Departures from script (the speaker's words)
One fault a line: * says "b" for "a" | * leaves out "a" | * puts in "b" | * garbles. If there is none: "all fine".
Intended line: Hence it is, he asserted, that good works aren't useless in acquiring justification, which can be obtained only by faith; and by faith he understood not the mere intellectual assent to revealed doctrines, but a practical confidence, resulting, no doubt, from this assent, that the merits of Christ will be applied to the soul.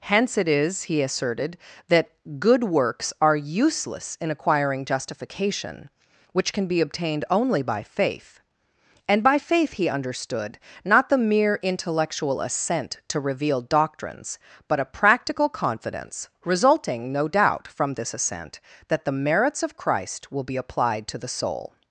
* says "are" for "aren't"